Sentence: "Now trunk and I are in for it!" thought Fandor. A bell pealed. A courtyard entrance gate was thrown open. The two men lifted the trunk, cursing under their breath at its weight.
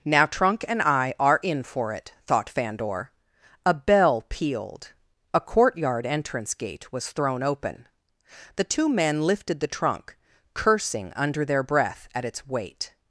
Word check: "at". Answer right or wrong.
right